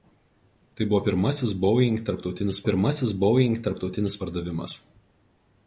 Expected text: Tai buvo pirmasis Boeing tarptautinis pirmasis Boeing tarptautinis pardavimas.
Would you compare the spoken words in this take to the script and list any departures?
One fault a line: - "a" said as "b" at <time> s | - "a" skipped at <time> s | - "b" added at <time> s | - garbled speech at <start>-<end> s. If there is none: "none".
none